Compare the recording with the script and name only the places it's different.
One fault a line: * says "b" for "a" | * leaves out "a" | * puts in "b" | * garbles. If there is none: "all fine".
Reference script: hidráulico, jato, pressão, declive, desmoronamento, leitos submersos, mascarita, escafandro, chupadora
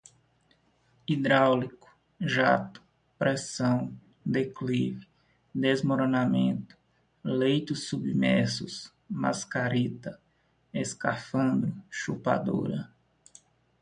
all fine